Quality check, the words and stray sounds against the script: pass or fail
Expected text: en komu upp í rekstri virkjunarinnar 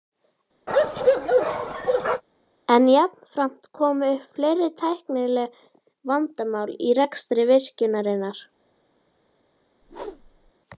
fail